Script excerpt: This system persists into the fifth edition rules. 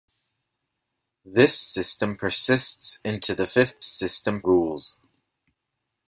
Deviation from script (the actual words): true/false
true